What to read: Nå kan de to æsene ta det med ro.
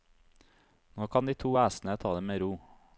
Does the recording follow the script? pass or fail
pass